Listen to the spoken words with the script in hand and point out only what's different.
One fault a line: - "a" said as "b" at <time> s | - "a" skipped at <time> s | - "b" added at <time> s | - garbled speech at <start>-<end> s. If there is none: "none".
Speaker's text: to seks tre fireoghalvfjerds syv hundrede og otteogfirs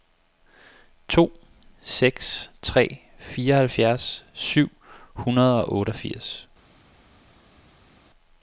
none